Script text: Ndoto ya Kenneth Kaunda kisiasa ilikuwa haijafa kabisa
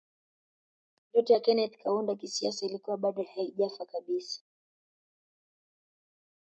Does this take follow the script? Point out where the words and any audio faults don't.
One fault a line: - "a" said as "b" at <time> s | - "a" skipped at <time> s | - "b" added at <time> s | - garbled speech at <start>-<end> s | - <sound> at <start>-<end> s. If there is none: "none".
- "bado" added at 3.0 s